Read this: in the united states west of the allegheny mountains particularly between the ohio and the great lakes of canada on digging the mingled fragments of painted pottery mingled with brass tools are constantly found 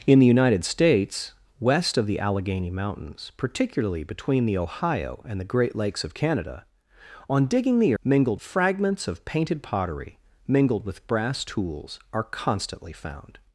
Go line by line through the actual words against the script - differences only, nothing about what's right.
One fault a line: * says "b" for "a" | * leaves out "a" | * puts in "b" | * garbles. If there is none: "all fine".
all fine